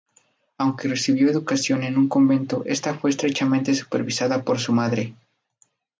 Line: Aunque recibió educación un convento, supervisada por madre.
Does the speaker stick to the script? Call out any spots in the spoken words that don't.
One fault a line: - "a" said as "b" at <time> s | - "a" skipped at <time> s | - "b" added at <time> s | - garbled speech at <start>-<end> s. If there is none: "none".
- "en" added at 1.8 s
- "esta fue estrechamente" added at 2.6 s
- "su" added at 4.6 s